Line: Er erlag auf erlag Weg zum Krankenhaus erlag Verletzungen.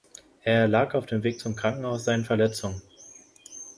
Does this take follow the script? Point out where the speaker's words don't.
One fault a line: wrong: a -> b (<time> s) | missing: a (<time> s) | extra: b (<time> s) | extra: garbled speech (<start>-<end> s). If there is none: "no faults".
wrong: erlag -> dem (1.1 s)
wrong: erlag -> seinen (2.0 s)